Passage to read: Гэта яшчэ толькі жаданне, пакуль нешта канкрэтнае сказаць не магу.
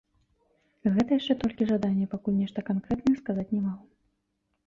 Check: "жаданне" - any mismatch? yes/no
no